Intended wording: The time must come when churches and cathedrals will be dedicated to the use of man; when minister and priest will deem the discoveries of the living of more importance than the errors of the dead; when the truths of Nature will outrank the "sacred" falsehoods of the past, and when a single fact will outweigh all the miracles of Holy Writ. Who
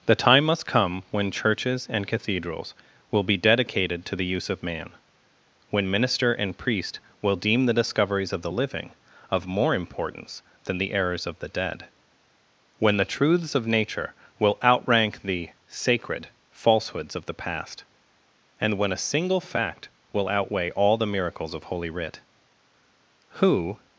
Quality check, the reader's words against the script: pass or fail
pass